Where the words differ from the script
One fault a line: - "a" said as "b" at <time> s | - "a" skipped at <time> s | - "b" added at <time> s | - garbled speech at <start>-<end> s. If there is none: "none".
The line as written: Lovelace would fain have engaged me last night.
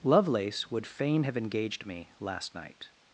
none